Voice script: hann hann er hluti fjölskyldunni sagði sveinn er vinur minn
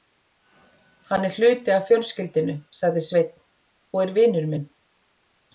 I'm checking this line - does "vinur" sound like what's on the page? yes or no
yes